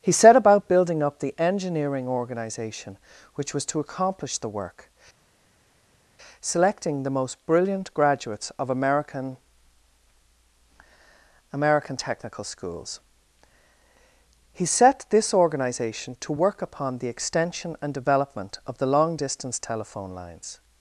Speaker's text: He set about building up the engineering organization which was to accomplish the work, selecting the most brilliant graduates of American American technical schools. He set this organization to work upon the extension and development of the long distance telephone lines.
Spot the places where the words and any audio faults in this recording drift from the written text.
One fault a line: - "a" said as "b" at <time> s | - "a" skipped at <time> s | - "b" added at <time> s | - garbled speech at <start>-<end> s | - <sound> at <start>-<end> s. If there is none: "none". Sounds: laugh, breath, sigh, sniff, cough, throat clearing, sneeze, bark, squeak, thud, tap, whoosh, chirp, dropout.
none